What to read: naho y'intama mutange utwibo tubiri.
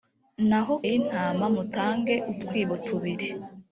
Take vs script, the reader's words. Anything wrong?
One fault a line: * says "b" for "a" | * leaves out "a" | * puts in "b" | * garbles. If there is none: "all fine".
all fine